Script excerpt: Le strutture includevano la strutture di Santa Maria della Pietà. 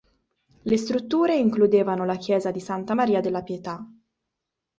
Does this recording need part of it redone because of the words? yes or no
yes